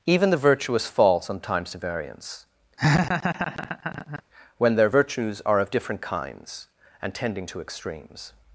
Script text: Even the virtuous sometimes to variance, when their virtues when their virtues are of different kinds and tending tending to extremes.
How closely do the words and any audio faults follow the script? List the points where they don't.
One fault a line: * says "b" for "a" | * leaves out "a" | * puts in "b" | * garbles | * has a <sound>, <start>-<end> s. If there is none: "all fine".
* puts in "fall"
* has a laugh, 2.8-4.2 s
* leaves out "when their virtues"
* leaves out "tending"